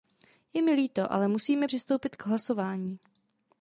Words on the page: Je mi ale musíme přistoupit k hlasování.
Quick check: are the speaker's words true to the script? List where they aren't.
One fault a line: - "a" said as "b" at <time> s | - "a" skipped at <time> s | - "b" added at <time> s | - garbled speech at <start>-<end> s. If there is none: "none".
- "líto" added at 0.7 s